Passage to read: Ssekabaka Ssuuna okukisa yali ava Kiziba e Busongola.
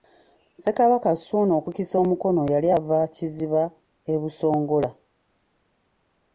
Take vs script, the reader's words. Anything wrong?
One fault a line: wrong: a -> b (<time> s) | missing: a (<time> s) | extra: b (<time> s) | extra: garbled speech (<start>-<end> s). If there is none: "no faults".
extra: omukono (2.0 s)